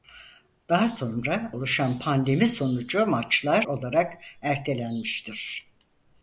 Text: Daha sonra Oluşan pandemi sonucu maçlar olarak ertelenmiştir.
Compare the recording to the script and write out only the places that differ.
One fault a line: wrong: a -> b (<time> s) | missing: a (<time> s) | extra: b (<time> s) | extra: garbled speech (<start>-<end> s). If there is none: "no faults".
no faults